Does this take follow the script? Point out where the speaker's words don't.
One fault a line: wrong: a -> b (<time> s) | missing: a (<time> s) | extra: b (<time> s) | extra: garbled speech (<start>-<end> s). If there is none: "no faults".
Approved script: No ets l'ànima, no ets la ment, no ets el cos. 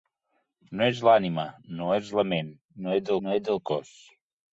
extra: no ets (3.3 s)